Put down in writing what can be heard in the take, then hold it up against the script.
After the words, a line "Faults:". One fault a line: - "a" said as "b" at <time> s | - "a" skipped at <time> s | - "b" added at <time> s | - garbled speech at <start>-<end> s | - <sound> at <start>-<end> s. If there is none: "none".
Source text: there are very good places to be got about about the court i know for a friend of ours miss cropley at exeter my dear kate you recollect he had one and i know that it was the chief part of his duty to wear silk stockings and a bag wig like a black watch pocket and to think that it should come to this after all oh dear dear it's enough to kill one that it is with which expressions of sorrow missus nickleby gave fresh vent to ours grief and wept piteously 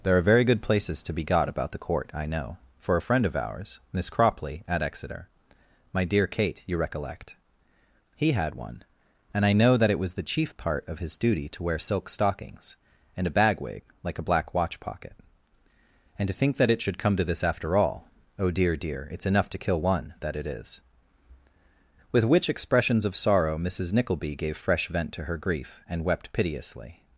there are very good places to be got about the court i know for a friend of ours miss cropley at exeter my dear kate you recollect he had one and i know that it was the chief part of his duty to wear silk stockings and a bag wig like a black watch pocket and to think that it should come to this after all oh dear dear it's enough to kill one that it is with which expressions of sorrow missus nickleby gave fresh vent to her grief and wept piteously
Faults:
- "about" skipped at 1.7 s
- "ours" said as "her" at 25.3 s